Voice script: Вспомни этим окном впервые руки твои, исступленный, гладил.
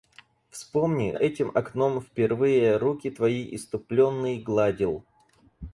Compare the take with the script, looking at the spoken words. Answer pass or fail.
pass